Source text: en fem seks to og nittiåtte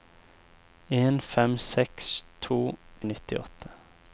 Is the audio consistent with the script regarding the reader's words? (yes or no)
yes